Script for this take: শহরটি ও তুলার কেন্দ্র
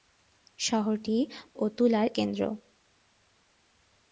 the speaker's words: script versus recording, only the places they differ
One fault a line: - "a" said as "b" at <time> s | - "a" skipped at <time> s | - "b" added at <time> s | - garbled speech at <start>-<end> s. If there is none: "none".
none